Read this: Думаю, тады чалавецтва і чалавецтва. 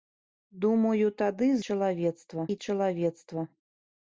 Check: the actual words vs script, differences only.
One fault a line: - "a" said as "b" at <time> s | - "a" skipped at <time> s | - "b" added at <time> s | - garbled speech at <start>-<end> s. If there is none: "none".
none